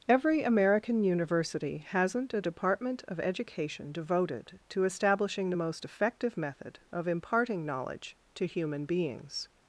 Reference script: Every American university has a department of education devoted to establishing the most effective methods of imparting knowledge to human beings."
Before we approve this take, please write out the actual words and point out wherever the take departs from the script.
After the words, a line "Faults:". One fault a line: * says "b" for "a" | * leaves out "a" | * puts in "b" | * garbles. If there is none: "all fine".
Every American university hasn't a department of education devoted to establishing the most effective method of imparting knowledge to human beings."
Faults:
* says "hasn't" for "has"
* says "method" for "methods"